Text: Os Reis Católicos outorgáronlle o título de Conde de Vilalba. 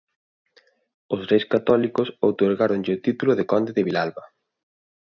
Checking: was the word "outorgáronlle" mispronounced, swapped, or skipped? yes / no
no